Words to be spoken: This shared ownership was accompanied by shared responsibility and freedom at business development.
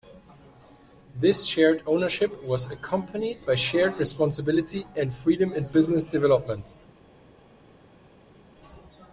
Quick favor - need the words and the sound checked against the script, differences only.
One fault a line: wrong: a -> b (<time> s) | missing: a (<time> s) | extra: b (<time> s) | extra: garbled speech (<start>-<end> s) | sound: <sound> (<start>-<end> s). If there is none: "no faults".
wrong: at -> in (5.5 s)